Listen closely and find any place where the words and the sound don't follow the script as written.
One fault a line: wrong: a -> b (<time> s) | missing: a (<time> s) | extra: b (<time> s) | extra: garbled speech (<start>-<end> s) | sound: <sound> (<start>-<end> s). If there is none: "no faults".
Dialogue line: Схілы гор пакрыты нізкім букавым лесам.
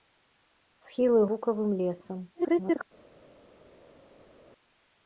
missing: гор пакрыты нізкім (1.2 s)
extra: garbled speech (2.3-2.8 s)